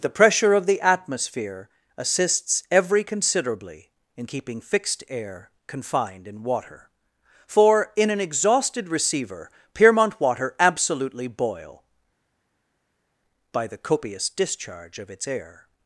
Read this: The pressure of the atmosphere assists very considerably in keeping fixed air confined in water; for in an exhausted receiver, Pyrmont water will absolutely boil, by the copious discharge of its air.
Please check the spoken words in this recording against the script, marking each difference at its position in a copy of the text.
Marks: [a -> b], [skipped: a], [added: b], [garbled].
The pressure of the atmosphere assists [very -> every] considerably in keeping fixed air confined in water; for in an exhausted receiver, Pyrmont water [skipped: will] absolutely boil, by the copious discharge of its air.